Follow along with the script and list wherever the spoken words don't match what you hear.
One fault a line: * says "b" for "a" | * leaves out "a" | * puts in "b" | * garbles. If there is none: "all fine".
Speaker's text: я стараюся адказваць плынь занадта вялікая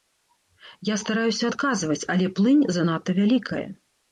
* puts in "але"